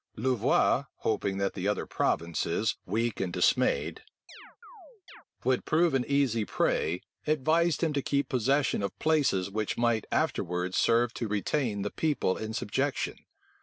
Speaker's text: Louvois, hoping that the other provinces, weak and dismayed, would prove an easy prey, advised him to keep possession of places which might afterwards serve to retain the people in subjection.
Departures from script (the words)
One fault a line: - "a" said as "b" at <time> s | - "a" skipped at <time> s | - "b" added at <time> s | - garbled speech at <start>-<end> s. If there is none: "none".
none